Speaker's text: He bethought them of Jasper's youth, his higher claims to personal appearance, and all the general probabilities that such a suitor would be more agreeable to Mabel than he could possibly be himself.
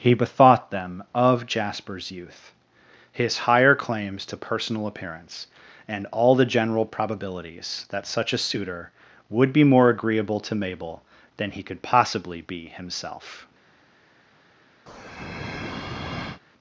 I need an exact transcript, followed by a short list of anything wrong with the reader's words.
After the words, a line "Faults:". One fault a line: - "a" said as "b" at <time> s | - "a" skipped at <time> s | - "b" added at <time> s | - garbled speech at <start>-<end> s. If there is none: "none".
He bethought them of Jasper's youth, his higher claims to personal appearance, and all the general probabilities that such a suitor would be more agreeable to Mabel than he could possibly be himself.
Faults:
none